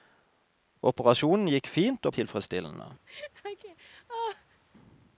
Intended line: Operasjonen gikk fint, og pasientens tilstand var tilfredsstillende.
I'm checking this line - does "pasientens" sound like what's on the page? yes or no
no